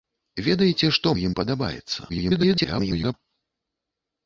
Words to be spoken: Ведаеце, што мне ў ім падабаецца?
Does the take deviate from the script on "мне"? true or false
true